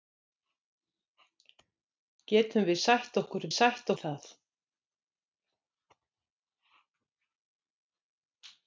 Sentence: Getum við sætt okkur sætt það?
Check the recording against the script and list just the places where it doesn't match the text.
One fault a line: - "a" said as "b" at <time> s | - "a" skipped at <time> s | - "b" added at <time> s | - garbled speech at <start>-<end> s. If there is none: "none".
none